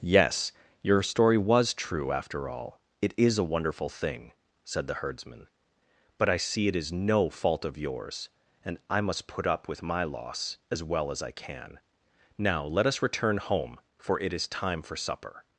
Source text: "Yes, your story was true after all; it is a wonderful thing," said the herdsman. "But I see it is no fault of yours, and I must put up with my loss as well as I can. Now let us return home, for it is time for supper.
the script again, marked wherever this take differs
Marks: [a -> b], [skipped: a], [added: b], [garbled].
"Yes, your story was true after all; it is a wonderful thing," said the herdsman. "But I see it is no fault of yours, and I must put up with my loss as well as I can. Now let us return home, for it is time for supper.